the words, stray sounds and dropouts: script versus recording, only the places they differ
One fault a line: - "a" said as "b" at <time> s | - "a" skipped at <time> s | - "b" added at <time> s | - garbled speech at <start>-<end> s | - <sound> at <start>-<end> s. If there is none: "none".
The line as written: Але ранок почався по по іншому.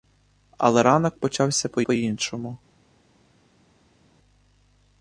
none